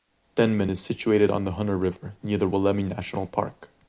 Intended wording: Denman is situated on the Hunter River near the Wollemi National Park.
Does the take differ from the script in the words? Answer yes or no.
no